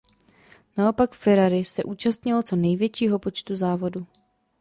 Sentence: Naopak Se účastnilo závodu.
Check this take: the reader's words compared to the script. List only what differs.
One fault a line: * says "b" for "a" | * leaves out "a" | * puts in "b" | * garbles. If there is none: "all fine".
* puts in "Ferrari"
* puts in "co největšího počtu"